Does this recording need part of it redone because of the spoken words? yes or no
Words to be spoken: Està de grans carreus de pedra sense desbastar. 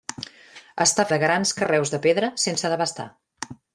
no